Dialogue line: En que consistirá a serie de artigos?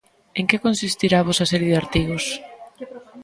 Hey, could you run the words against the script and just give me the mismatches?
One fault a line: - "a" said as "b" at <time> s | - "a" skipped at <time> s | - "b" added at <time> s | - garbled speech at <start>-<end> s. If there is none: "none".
- "vosa" added at 1.3 s